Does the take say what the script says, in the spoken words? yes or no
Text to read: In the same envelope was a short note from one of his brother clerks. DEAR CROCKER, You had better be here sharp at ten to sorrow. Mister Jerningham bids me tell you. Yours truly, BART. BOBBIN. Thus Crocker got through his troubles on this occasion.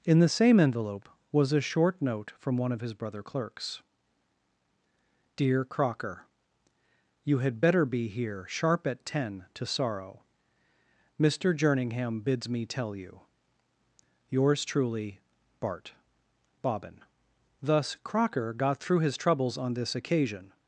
yes